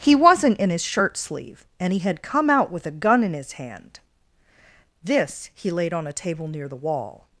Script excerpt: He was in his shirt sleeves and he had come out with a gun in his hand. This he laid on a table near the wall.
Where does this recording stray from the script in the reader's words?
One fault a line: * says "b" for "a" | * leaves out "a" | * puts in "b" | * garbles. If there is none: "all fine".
* says "wasn't" for "was"
* says "sleeve" for "sleeves"